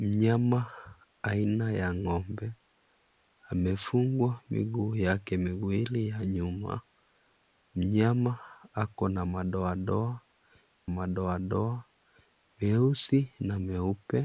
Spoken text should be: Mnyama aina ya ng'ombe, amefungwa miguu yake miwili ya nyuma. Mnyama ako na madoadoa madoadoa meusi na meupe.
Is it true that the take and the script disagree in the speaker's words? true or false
false